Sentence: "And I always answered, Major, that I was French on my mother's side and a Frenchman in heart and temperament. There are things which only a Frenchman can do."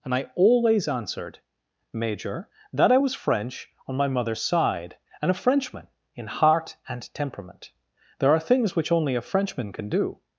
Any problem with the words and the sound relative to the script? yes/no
no